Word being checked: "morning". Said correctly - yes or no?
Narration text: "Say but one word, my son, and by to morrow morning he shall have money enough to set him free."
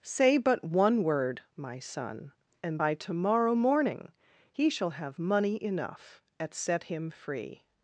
yes